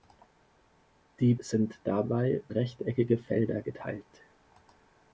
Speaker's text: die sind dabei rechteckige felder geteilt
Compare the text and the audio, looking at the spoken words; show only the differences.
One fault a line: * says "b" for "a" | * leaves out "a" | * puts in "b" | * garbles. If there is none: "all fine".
all fine